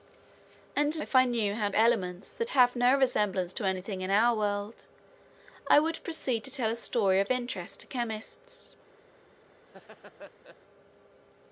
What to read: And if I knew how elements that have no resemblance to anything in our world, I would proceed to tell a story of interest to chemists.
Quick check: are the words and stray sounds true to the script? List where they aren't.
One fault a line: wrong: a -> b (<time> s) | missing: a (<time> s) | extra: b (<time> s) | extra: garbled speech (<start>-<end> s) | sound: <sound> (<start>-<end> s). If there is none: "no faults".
sound: laugh (9.7-10.6 s)